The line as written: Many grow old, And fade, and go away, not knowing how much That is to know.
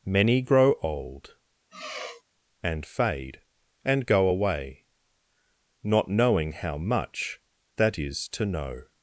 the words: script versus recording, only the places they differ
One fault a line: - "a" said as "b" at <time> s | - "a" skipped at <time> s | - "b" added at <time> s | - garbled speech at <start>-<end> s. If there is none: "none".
none